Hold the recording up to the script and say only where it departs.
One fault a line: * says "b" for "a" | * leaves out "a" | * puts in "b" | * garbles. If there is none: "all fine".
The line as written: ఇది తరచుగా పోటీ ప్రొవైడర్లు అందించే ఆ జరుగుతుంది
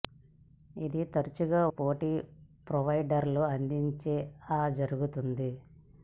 all fine